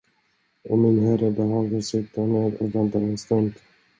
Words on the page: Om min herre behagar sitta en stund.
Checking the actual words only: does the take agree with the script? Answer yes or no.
no